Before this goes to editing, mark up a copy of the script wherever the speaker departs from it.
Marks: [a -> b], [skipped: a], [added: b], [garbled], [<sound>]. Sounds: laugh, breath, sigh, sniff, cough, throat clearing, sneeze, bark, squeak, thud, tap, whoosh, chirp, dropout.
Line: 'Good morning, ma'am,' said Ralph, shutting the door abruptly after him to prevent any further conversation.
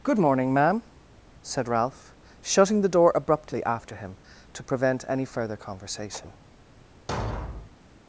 'Good morning, ma'am,' said Ralph, shutting the door abruptly after him to prevent any further conversation. [thud]